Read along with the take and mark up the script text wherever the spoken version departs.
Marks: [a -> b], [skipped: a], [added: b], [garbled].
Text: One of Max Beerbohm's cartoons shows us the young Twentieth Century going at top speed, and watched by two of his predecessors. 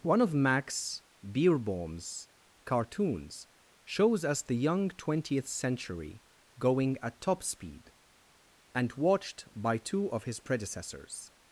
One of Max Beerbohm's cartoons shows us the young Twentieth Century going at top speed, and watched by two of his predecessors.